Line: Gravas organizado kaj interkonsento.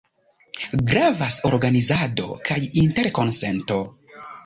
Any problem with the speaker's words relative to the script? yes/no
no